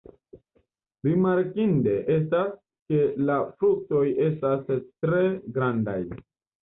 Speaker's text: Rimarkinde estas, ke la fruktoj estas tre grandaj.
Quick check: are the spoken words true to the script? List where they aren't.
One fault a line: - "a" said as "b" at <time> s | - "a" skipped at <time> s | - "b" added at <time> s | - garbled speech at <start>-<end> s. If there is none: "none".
none